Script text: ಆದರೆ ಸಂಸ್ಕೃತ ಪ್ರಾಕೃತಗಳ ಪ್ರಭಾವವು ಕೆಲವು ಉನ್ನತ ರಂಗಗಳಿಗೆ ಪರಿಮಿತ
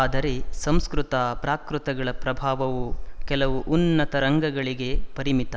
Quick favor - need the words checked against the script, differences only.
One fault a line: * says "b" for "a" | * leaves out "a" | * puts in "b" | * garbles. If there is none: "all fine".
all fine